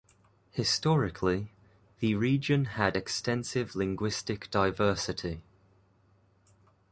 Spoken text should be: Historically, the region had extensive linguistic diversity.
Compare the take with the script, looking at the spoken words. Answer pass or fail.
pass